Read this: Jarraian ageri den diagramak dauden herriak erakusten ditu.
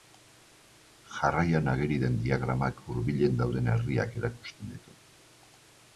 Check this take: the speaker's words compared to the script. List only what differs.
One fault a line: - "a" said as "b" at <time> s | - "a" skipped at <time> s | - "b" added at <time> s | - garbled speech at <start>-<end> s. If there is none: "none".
- "hurbilen" added at 2.9 s